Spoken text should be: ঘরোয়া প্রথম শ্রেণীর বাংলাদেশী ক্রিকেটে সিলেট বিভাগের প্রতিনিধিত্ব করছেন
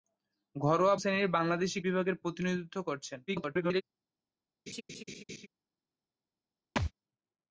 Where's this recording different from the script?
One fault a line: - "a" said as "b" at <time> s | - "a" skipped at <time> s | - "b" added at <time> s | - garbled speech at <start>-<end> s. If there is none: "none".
- "প্রথম" skipped at 0.9 s
- "ক্রিকেটে সিলেট" skipped at 1.8 s
- garbled speech at 3.3-3.8 s